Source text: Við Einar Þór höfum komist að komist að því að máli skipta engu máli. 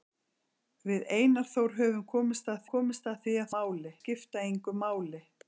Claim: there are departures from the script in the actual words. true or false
false